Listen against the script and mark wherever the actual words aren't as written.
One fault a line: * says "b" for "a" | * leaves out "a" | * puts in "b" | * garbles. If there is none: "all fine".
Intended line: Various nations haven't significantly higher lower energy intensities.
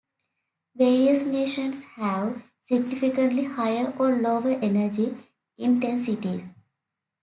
* says "have" for "haven't"
* puts in "or"